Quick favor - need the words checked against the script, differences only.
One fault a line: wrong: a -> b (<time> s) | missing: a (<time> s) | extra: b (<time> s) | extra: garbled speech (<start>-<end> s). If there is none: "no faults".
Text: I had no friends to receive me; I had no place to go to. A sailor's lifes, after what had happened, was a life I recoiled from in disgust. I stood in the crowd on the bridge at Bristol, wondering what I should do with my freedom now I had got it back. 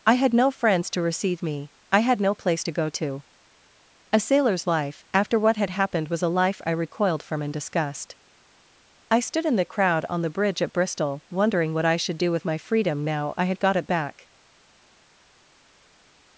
wrong: lifes -> life (4.6 s)